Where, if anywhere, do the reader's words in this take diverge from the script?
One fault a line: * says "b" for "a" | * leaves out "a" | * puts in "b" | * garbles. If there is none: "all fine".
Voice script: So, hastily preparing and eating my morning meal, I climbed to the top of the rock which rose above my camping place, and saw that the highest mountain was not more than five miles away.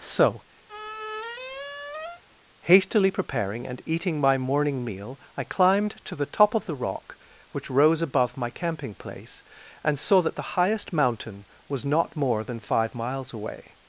all fine